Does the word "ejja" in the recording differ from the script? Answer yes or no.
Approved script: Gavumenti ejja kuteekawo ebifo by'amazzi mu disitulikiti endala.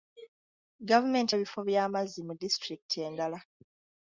yes